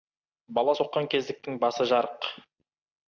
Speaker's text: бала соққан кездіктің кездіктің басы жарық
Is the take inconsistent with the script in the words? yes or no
yes